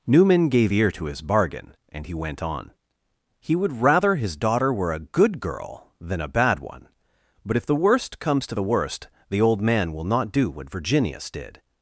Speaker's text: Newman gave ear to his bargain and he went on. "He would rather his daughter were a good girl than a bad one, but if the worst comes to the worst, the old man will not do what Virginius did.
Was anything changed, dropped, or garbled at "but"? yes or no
no